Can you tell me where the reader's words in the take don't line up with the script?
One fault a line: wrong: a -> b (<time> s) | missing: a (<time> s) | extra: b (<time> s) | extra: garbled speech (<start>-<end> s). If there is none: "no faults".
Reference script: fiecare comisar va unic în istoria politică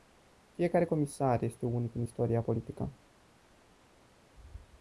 wrong: va -> este (1.4 s)